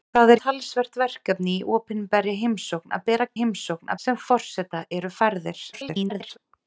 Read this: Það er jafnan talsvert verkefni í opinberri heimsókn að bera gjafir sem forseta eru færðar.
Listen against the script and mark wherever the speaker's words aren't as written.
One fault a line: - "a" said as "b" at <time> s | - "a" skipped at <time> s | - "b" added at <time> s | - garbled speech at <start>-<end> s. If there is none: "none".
- "jafnan" skipped at 0.4 s
- "gjafir" said as "heimsókn" at 3.4 s
- garbled speech at 5.7-6.4 s